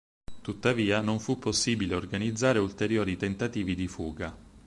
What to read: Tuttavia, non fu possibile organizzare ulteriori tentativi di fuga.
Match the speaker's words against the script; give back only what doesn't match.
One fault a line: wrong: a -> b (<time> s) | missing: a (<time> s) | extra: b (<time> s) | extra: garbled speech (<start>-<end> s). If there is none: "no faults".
no faults